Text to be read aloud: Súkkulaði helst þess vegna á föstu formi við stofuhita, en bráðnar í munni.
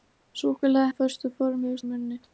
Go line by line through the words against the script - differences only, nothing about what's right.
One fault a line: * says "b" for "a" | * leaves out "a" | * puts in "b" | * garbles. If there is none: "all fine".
* leaves out "helst þess vegna"
* leaves out "stofuhita en bráðnar"